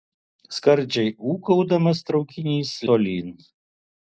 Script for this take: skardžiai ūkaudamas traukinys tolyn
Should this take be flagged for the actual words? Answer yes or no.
no